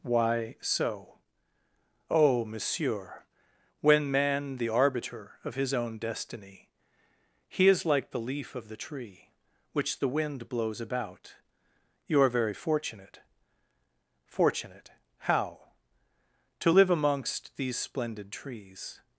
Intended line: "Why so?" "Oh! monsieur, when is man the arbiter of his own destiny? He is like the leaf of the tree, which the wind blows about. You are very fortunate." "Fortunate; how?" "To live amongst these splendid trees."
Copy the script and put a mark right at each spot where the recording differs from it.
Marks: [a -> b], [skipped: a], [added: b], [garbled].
"Why so?" "Oh! monsieur, when [skipped: is] man the arbiter of his own destiny? He is like the leaf of the tree, which the wind blows about. You are very fortunate." "Fortunate; how?" "To live amongst these splendid trees."